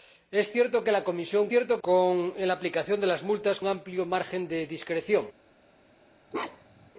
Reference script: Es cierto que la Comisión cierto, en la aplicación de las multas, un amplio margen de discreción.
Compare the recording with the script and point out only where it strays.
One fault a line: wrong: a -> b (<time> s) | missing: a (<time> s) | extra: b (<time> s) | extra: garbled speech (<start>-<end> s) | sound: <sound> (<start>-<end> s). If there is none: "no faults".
sound: bark (6.3-6.9 s)